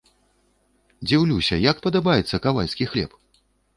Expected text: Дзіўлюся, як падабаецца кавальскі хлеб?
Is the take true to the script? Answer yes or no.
yes